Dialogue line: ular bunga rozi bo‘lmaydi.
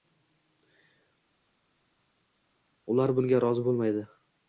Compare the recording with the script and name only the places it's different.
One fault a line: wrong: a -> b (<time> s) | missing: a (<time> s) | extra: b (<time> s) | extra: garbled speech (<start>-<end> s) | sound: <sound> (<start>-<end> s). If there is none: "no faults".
no faults